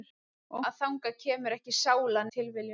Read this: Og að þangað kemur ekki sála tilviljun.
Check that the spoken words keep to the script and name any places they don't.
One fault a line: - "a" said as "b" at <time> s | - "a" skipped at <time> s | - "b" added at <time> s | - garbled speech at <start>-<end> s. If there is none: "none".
none